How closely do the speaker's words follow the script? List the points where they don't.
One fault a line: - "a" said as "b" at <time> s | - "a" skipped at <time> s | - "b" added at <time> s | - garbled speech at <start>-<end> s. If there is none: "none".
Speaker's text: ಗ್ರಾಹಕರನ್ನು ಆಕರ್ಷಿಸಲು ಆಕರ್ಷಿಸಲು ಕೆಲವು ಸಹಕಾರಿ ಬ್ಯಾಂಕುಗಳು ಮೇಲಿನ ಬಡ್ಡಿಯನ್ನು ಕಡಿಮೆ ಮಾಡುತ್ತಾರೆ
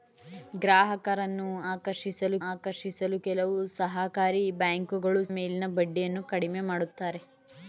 none